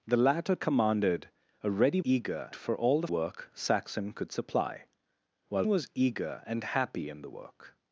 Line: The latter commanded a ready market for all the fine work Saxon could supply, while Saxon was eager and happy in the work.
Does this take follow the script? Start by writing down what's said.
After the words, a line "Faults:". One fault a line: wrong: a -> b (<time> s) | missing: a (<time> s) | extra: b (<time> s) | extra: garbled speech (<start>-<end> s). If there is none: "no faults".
The latter commanded a ready eager for all the work Saxon could supply, while Was eager and happy in the work.
Faults:
wrong: market -> eager (2.0 s)
missing: fine (3.1 s)
missing: Saxon (5.6 s)